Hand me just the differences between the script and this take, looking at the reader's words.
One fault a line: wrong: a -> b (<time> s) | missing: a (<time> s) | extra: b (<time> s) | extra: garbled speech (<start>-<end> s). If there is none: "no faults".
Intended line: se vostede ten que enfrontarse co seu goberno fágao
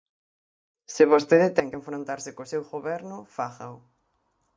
no faults